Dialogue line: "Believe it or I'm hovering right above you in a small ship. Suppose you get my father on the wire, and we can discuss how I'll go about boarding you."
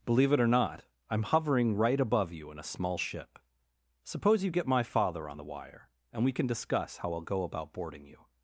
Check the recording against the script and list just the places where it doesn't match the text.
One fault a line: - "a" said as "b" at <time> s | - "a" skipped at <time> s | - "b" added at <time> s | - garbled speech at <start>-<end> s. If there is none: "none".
- "not" added at 0.5 s